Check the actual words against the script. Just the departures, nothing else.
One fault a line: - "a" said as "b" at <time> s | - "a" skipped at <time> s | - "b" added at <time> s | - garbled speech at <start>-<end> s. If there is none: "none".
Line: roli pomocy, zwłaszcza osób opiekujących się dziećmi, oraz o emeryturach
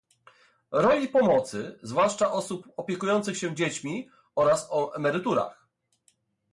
none